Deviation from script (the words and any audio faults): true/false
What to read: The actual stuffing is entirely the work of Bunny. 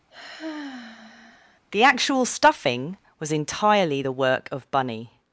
true